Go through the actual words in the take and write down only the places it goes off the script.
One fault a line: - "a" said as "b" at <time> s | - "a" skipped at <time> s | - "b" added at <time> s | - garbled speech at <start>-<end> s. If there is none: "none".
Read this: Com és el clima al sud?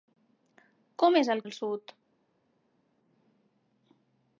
- "clima" skipped at 1.4 s